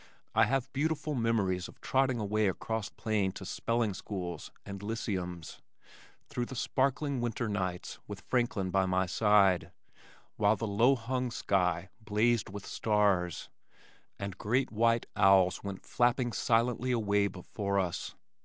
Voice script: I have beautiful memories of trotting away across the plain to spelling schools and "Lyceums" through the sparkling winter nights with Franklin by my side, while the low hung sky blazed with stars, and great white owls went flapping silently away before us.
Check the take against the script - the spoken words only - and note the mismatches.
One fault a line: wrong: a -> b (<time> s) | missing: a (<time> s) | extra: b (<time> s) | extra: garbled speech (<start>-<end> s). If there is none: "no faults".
missing: the (2.9 s)